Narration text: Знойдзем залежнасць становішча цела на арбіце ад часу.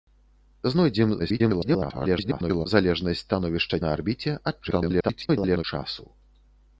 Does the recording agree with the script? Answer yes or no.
no